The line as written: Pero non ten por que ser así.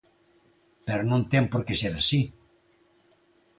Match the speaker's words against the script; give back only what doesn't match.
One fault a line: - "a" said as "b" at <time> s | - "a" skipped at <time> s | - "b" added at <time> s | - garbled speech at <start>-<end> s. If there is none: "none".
none